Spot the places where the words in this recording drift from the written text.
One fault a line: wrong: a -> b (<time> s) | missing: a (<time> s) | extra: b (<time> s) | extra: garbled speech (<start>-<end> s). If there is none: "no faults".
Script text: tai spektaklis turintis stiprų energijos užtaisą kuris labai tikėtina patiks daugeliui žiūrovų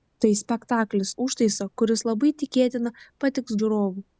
missing: turintis stiprų energijos (1.1 s)
missing: daugeliui (3.6 s)